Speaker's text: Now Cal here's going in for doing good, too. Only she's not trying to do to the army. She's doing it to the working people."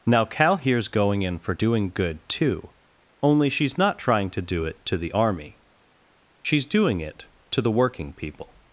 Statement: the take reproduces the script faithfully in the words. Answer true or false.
false